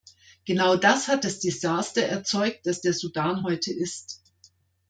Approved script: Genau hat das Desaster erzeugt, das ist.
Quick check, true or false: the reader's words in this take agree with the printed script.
false